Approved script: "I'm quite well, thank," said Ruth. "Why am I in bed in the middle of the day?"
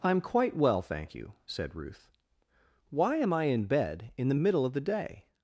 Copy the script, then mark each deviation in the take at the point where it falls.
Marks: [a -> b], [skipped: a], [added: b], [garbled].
"I'm quite well, thank," [added: you] said Ruth. "Why am I in bed in the middle of the day?"